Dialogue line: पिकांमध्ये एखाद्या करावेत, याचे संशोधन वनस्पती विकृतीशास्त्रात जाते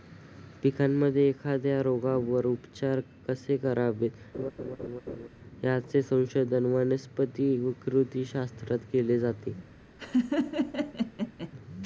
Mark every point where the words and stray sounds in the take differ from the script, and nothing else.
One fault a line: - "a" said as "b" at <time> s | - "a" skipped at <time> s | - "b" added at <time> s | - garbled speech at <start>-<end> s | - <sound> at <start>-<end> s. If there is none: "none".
- "रोगावर उपचार कसे" added at 1.8 s
- laugh at 4.3-5.3 s
- "केले" added at 8.9 s
- laugh at 10.0-11.5 s